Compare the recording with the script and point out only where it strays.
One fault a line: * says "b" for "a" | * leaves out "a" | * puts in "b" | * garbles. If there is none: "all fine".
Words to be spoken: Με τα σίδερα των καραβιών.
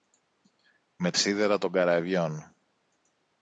* leaves out "τα"